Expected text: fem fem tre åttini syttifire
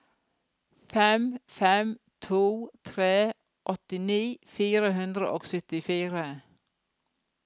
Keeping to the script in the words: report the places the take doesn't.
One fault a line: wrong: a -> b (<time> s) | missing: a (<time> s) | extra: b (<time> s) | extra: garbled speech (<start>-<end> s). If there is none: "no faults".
extra: to (2.3 s)
extra: fire hundre og (4.6 s)